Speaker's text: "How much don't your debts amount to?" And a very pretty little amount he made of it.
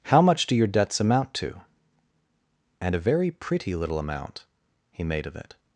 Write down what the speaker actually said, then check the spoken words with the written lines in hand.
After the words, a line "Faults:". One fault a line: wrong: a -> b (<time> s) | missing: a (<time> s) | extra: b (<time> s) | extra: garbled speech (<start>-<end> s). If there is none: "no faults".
"How much do your debts amount to?" And a very pretty little amount he made of it.
Faults:
wrong: don't -> do (0.5 s)